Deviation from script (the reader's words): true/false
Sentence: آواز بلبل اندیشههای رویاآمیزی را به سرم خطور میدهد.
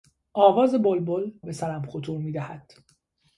true